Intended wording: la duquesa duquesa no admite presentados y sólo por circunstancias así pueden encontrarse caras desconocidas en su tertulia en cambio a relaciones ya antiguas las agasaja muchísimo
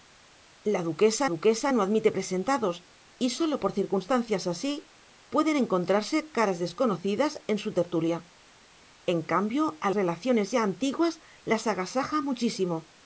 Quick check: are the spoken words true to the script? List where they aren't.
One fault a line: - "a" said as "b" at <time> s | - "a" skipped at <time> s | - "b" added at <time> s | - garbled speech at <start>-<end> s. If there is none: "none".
none